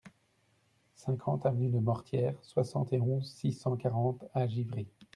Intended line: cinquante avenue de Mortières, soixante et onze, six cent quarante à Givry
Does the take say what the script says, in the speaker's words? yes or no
yes